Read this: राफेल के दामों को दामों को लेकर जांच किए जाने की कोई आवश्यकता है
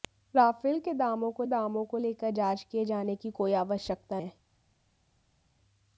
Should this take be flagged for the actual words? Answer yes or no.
no